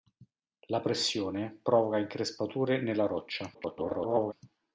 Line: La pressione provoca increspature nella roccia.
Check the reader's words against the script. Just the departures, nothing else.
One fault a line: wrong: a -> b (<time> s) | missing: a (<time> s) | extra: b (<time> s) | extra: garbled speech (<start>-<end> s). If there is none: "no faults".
extra: garbled speech (3.5-4.3 s)